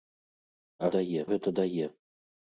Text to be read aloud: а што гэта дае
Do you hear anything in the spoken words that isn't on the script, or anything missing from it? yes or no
yes